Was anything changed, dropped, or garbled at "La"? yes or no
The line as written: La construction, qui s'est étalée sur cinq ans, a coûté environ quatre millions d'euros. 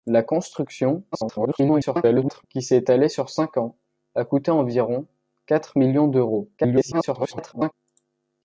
no